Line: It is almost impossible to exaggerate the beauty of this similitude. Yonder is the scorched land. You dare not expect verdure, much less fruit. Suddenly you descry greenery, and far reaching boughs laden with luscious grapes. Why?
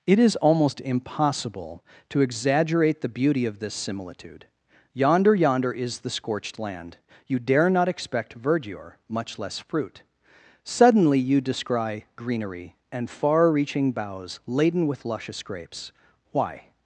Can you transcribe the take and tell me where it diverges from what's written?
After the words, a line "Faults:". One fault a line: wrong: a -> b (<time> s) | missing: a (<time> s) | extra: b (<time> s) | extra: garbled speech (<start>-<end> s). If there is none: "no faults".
It is almost impossible to exaggerate the beauty of this similitude. Yonder Yonder is the scorched land. You dare not expect verdure, much less fruit. Suddenly you descry greenery, and far reaching boughs laden with luscious grapes. Why?
Faults:
extra: Yonder (5.3 s)